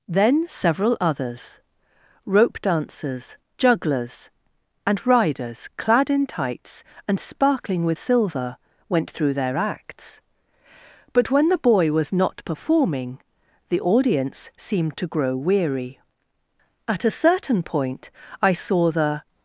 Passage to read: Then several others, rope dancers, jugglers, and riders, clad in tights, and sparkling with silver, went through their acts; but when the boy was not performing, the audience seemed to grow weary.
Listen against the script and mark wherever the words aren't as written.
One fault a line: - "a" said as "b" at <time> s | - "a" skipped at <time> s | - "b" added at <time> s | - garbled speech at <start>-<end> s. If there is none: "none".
- "At a certain point I saw the" added at 16.9 s